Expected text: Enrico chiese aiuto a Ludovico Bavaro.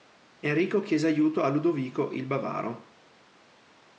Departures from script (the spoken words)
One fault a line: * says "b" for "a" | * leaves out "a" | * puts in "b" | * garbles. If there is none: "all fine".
* puts in "il"